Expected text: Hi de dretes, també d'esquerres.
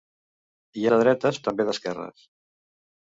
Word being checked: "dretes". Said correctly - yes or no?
yes